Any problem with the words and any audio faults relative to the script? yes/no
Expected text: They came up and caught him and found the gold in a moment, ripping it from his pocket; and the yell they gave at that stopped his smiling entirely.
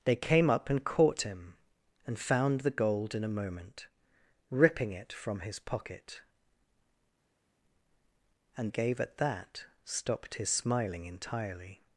yes